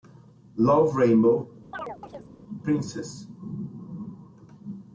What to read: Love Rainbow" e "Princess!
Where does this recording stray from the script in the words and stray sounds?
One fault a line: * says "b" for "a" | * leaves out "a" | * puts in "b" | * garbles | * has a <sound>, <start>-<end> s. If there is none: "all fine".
* leaves out "e"
* has a chirp, 1.7-2.3 s